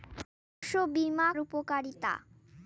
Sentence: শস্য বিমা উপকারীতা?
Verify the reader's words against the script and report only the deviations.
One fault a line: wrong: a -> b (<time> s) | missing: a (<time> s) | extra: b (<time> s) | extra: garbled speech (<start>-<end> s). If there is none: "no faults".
no faults